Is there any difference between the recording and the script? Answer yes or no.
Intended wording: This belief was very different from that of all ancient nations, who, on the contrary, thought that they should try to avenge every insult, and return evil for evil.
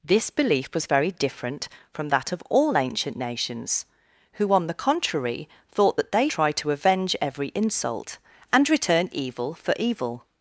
yes